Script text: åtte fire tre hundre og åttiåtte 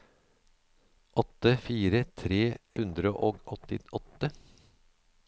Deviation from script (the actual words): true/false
false